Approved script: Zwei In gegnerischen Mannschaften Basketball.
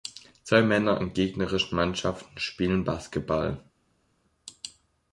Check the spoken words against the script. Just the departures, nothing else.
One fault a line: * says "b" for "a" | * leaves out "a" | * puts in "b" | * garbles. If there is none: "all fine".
* puts in "Männer"
* puts in "spielen"